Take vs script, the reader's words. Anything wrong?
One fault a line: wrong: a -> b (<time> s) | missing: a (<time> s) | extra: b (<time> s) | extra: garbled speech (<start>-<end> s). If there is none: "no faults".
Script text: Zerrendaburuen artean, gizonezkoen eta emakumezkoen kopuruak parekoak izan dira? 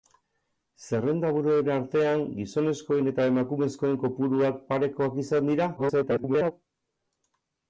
extra: garbled speech (5.8-6.5 s)